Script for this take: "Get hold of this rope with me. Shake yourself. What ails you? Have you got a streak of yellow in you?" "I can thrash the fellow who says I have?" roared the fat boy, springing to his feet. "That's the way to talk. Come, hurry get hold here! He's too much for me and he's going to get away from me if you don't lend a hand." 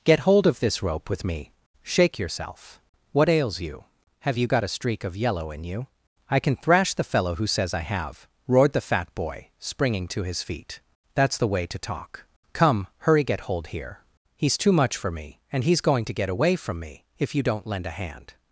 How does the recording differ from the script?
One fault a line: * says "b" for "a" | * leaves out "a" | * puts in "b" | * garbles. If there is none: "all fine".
all fine